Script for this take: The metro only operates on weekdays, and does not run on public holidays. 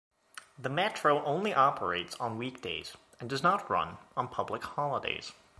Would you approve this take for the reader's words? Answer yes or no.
yes